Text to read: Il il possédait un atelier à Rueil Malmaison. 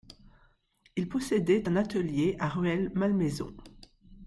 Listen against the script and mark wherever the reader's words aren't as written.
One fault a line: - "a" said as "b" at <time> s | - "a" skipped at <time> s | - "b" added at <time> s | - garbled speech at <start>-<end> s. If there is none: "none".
- "il" skipped at 1.1 s